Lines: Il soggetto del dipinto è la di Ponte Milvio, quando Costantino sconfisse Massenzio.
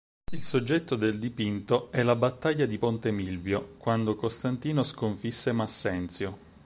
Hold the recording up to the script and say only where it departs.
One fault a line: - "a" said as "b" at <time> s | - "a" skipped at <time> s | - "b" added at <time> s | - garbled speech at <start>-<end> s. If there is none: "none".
- "battaglia" added at 2.1 s